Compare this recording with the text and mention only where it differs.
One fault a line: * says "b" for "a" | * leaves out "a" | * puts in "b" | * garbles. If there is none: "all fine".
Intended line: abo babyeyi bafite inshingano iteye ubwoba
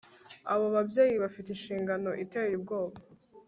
all fine